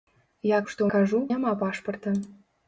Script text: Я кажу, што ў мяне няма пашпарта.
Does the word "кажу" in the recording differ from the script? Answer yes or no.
yes